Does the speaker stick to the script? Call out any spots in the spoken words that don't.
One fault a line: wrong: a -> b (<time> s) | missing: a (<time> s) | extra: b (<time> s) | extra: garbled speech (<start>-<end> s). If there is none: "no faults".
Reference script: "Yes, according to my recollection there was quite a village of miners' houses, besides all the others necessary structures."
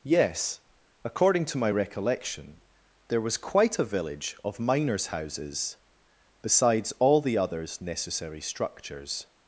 no faults